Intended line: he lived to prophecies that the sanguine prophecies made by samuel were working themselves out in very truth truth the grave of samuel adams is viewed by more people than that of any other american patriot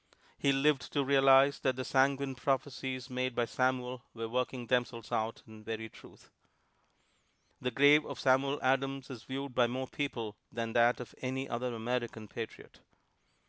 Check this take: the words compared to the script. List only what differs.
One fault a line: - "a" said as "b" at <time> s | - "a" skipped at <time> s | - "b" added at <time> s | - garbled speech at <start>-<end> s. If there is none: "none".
- "prophecies" said as "realize" at 1.0 s
- "truth" skipped at 6.3 s